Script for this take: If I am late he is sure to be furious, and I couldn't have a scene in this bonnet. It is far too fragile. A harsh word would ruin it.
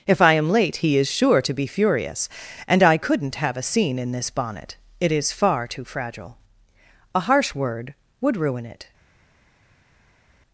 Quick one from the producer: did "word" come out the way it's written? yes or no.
yes